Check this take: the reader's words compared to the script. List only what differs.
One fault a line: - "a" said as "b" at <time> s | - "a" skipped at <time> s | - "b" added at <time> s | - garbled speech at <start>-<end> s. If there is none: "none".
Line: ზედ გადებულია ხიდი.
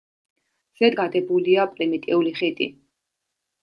- "პრიმიტიული" added at 1.7 s